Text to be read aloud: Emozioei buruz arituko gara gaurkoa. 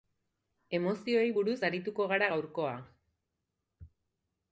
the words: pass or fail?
pass